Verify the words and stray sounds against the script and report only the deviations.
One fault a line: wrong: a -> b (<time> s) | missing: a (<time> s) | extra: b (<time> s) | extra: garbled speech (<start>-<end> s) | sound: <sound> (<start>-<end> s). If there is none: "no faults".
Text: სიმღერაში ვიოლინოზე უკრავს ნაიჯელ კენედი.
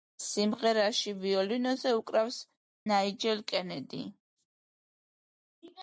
no faults